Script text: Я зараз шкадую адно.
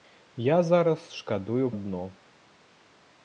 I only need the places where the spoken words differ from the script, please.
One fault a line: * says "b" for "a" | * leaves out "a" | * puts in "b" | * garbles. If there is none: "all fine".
all fine